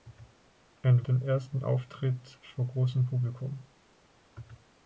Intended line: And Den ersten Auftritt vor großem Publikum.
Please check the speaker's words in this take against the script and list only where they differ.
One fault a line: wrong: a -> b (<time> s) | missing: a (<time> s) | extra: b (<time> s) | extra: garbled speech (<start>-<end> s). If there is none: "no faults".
no faults